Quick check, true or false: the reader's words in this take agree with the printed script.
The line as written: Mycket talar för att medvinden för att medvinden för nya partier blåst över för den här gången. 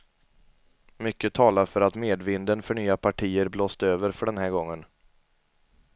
false